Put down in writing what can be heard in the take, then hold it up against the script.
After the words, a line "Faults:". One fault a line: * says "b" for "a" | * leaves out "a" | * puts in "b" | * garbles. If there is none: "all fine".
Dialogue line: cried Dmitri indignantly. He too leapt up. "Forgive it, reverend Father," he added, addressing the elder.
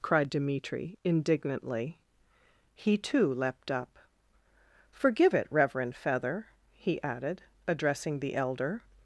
cried Dmitri indignantly. He too leapt up. "Forgive it, reverend Feather," he added, addressing the elder.
Faults:
* says "Feather" for "Father"